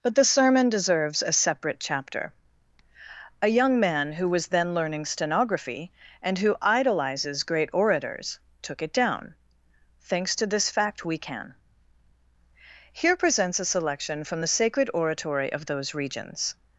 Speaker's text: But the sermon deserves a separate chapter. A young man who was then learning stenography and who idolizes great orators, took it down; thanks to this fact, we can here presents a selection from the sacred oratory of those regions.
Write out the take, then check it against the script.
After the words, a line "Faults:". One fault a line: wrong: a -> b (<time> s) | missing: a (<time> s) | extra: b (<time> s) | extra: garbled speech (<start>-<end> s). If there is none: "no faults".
But the sermon deserves a separate chapter. A young man who was then learning stenography and who idolizes great orators, took it down; thanks to this fact, we can here presents a selection from the sacred oratory of those regions.
Faults:
no faults